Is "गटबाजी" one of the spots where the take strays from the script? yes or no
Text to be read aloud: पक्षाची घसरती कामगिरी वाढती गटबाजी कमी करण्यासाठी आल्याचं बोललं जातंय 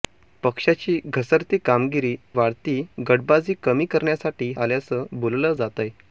no